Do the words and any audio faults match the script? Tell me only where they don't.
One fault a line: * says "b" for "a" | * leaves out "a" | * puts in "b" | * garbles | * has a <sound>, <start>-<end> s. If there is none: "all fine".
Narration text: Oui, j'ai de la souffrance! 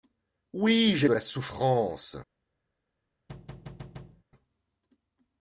* has a thud, 3.3-4.2 s